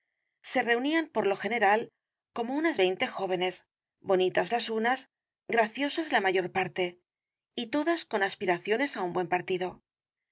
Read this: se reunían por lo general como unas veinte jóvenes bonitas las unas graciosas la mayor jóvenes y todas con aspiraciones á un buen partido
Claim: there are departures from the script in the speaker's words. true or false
true